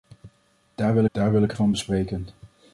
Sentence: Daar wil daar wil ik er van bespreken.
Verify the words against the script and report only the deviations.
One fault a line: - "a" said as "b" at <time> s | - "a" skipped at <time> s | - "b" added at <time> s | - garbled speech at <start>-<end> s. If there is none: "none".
none